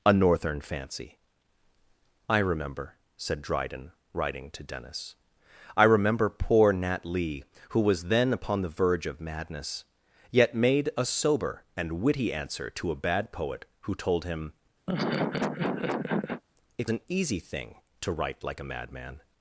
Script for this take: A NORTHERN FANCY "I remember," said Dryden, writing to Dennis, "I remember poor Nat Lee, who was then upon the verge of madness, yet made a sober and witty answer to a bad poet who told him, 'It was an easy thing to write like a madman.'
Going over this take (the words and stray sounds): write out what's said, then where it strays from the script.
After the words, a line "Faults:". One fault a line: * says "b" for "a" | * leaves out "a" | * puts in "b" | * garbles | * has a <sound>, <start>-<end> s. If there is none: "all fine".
A NORTHERN FANCY "I remember," said Dryden, writing to Dennis, "I remember poor Nat Lee, who was then upon the verge of madness, yet made a sober and witty answer to a bad poet who told him, 'It an easy thing to write like a madman.'
Faults:
* has a laugh, 14.9-16.4 s
* leaves out "was"